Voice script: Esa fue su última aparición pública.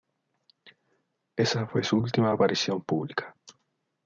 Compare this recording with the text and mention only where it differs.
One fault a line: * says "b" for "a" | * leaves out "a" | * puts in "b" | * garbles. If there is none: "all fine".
all fine